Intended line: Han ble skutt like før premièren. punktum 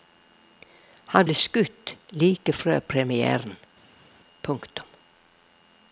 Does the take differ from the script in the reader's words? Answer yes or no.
no